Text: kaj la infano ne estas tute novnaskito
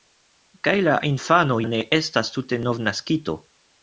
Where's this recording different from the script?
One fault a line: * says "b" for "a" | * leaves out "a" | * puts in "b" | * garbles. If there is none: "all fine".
all fine